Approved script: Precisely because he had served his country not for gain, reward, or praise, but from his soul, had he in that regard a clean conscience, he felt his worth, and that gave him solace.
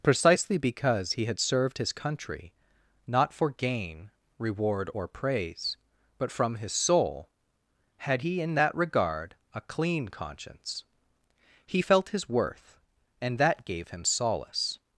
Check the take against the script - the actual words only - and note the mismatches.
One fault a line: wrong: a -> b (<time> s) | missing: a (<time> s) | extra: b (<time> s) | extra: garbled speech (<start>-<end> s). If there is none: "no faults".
no faults